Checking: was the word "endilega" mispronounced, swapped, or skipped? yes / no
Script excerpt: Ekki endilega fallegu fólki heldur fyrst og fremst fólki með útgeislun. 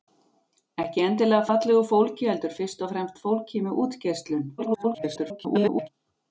no